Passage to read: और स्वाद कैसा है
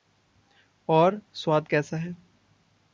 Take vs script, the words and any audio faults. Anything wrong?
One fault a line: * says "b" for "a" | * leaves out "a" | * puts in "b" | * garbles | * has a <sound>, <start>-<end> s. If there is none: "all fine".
all fine